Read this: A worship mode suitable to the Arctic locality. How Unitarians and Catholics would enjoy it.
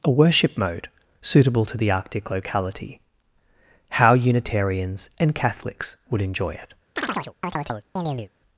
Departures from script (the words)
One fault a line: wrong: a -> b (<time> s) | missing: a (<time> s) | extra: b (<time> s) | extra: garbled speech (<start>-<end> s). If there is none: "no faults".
no faults